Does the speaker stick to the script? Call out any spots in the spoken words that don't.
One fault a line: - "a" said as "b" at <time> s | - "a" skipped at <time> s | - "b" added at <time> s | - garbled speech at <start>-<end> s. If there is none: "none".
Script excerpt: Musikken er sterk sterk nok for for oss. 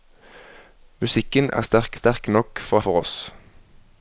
none